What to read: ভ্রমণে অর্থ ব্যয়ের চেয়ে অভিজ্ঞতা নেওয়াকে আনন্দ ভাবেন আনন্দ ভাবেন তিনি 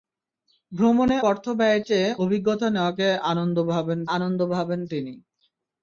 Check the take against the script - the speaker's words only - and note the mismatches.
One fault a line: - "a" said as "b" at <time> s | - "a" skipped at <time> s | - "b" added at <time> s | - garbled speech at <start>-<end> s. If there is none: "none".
none